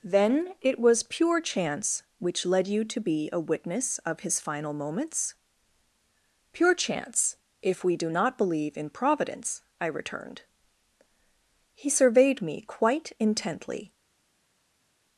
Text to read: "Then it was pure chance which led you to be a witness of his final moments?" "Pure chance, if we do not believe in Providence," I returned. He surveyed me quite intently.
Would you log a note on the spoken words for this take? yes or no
no